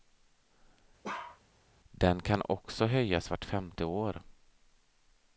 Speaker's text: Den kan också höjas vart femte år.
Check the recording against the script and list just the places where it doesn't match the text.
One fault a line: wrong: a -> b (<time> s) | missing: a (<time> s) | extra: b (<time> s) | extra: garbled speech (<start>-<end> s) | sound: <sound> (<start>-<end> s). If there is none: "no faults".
sound: bark (1.0-1.4 s)